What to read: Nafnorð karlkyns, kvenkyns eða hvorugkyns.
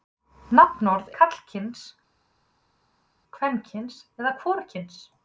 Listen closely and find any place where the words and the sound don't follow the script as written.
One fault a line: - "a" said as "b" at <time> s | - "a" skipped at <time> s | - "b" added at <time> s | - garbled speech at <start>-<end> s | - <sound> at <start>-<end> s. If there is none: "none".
none